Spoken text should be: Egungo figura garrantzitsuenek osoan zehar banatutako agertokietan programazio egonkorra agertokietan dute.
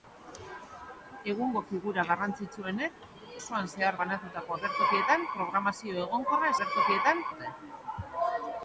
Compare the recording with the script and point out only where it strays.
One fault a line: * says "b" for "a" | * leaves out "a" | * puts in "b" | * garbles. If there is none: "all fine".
all fine